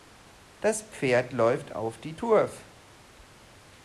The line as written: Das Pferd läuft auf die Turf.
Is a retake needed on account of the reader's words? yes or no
no